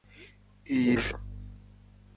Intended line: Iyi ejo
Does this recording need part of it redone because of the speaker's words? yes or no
no